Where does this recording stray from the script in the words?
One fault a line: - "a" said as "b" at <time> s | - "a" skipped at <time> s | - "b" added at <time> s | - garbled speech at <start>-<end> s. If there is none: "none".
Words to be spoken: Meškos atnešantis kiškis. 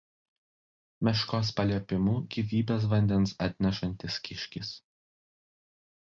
- "paliepimu gyvybės vandens" added at 1.6 s